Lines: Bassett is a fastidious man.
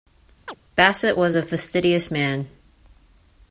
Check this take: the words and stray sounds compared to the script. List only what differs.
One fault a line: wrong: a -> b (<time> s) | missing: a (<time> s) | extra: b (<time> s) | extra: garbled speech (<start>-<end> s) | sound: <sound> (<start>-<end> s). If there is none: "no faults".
sound: chirp (0.5-0.6 s)
wrong: is -> was (1.1 s)